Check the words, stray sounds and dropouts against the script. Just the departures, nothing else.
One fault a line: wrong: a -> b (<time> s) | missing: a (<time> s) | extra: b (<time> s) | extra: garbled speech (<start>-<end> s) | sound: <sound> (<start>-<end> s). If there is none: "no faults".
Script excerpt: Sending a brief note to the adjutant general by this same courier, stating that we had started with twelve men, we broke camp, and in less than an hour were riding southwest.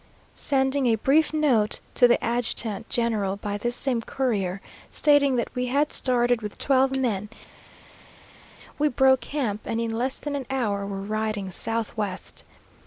no faults